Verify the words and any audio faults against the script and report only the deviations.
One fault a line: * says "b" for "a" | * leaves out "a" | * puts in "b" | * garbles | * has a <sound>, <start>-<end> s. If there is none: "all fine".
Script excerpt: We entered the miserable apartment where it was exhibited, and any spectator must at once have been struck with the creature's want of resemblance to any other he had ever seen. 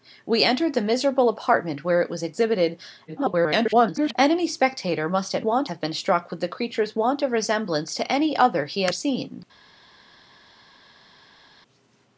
* garbles
* says "want" for "once"
* leaves out "ever"